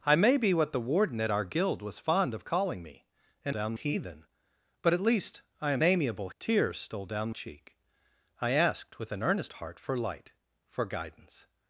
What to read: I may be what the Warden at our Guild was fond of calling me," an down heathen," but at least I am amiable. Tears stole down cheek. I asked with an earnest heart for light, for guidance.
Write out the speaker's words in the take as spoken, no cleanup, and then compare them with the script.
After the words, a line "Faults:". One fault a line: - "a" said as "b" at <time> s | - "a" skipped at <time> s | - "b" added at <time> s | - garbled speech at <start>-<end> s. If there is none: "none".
I may be what the Warden at our Guild was fond of calling me," an down heathen," but at least I am amiable. Tears stole down cheek. I asked with an earnest heart for light, for guidance.
Faults:
none